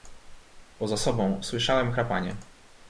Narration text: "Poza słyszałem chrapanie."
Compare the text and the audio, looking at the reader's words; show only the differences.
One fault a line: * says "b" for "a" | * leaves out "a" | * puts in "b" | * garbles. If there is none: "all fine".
* puts in "sobą"